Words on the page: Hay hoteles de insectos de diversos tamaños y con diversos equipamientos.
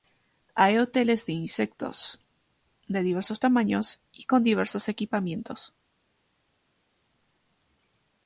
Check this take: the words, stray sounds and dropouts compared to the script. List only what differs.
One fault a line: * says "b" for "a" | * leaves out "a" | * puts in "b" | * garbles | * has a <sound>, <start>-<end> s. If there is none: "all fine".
all fine